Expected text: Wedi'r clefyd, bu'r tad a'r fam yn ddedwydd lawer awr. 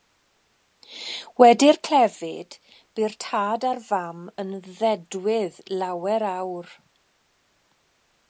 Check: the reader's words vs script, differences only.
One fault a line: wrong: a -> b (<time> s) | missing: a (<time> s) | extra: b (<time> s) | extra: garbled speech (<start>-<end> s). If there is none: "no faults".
no faults